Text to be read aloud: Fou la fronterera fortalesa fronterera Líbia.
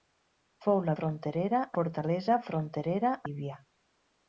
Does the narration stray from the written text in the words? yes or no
no